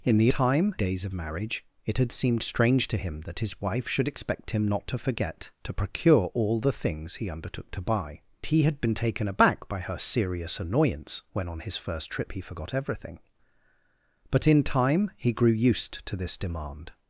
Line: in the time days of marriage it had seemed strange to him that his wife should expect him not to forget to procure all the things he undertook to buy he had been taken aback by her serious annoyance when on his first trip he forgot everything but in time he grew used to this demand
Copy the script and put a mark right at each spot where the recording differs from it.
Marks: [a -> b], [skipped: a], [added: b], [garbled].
in the time days of marriage it had seemed strange to him that his wife should expect him not to forget to procure all the things he undertook to buy he had been taken aback by her serious annoyance when on his first trip he forgot everything but in time he grew used to this demand